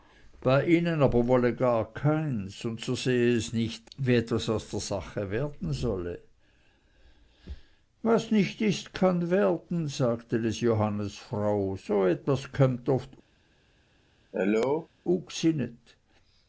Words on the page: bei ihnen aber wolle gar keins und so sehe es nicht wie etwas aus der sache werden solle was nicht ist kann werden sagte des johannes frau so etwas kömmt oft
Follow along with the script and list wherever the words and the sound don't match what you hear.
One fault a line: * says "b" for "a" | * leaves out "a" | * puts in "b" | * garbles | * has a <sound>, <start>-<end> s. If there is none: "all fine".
* has a cough, 14.3-14.9 s